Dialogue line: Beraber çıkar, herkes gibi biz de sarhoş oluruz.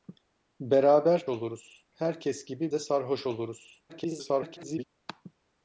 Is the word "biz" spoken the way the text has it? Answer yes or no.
no